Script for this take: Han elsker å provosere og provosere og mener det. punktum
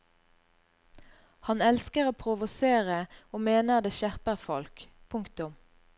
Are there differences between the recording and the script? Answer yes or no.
yes